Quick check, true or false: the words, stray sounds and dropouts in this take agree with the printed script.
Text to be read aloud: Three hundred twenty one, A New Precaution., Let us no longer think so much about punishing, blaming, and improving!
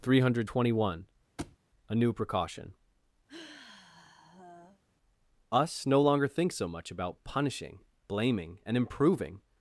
false